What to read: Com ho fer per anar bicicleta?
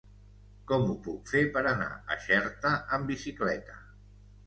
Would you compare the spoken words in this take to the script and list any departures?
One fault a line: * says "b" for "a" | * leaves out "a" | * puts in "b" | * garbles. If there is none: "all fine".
* puts in "puc"
* puts in "a Xerta amb"